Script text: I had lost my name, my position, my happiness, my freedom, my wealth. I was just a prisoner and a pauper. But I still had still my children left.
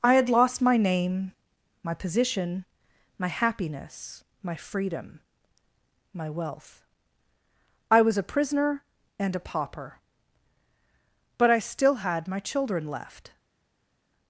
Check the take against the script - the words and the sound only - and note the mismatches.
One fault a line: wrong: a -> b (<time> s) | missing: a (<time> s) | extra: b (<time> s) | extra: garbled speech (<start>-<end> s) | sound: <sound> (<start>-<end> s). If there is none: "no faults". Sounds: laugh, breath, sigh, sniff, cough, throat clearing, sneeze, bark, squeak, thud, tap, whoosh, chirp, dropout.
missing: just (8.2 s)
missing: still (12.3 s)